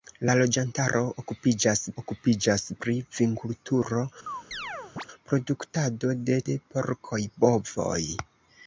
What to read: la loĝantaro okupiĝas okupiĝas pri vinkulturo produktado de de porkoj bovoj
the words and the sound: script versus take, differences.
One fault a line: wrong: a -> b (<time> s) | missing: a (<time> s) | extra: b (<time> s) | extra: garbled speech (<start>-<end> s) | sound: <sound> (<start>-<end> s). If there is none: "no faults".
sound: chirp (4.3-5.1 s)